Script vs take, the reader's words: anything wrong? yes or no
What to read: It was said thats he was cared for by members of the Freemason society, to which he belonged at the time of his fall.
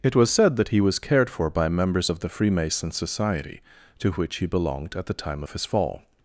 yes